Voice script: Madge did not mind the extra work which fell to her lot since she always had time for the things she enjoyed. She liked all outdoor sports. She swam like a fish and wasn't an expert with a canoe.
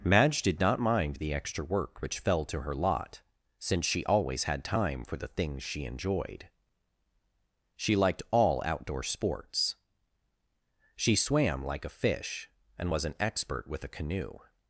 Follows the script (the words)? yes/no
no